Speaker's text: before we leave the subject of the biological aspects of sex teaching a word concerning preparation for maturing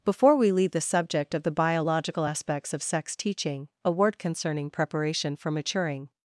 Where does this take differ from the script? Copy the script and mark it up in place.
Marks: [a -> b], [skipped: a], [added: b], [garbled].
before we leave the subject of the biological aspects of sex teaching a word concerning preparation for maturing